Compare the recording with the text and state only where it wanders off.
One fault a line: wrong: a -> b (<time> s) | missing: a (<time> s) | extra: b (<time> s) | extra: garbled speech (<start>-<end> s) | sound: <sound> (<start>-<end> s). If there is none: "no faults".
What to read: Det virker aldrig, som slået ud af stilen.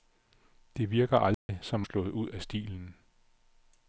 sound: dropout (1.3-1.5 s)